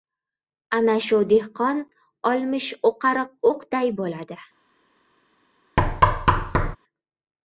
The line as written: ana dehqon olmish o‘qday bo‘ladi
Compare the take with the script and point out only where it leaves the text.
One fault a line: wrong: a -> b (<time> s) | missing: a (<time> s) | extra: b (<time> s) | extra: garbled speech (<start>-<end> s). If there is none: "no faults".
extra: shu (1.1 s)
extra: o‘qariq (2.9 s)